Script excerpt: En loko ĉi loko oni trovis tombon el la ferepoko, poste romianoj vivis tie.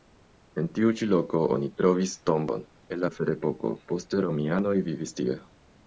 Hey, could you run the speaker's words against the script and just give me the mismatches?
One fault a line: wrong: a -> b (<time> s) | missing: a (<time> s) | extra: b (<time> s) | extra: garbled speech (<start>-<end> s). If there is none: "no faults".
wrong: loko -> tiu (0.8 s)